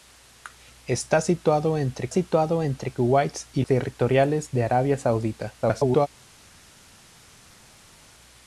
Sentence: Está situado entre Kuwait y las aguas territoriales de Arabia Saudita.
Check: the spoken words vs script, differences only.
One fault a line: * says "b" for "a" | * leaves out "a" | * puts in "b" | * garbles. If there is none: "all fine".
* puts in "situado entre"
* leaves out "las aguas"
* garbles